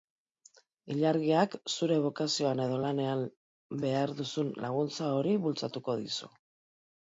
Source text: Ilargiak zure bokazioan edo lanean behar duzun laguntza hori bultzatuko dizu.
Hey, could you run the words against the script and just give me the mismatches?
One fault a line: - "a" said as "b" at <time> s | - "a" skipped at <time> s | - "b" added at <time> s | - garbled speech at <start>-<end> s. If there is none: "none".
none